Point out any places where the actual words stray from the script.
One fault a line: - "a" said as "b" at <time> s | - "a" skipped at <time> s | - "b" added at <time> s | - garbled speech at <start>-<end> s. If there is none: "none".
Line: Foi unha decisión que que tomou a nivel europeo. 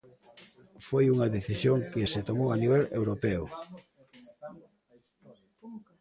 - "que" said as "se" at 2.1 s